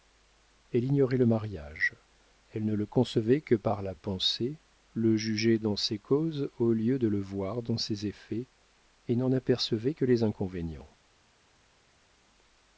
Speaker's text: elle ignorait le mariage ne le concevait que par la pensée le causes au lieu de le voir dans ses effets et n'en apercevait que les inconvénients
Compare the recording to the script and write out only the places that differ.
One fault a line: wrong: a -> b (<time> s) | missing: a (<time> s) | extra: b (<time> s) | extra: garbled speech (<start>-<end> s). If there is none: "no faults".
extra: elle (2.5 s)
extra: jugeait dans ses (5.2 s)